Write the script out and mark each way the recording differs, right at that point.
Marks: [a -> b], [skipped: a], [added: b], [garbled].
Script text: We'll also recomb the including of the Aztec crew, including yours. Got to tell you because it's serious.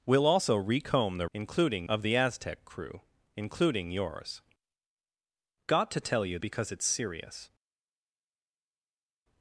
We'll also recomb the including of the Aztec crew, including yours. Got to tell you because it's serious.